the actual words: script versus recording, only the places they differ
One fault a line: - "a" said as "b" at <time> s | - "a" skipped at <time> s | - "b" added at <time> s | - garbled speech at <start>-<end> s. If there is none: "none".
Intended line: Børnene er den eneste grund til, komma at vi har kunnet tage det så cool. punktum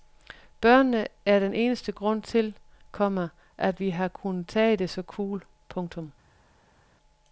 none